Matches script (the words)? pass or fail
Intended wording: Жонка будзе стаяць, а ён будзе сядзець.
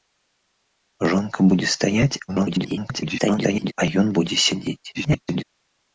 fail